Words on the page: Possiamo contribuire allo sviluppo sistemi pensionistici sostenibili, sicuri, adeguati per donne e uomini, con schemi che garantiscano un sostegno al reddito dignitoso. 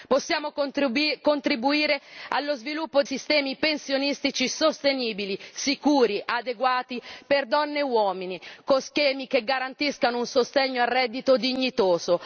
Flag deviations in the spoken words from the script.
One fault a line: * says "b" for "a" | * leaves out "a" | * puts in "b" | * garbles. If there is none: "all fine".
all fine